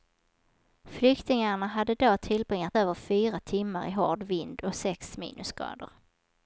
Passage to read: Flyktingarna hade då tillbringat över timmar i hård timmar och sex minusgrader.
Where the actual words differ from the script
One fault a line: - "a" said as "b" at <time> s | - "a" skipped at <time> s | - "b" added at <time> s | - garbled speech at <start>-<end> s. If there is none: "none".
- "fyra" added at 2.9 s
- "timmar" said as "vind" at 4.2 s